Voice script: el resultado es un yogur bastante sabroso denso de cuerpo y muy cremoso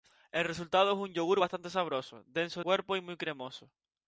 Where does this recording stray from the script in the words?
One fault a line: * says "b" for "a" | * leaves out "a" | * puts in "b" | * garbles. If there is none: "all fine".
* leaves out "de"